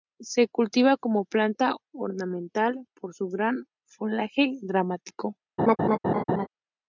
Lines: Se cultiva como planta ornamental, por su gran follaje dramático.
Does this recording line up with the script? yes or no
yes